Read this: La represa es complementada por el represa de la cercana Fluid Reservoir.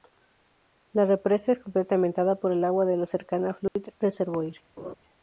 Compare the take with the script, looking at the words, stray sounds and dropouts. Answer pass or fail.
fail